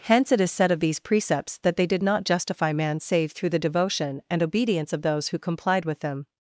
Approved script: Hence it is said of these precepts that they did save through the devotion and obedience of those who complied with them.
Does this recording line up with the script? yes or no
no